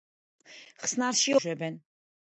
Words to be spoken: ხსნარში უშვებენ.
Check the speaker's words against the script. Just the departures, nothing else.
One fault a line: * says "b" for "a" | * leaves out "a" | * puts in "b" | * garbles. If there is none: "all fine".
all fine